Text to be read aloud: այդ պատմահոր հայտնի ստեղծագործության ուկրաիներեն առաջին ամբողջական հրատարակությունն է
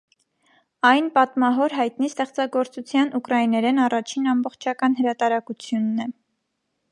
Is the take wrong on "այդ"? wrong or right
wrong